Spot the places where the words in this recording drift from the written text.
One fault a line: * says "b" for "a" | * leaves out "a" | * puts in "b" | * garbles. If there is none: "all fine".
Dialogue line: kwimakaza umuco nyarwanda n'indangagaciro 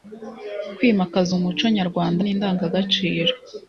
all fine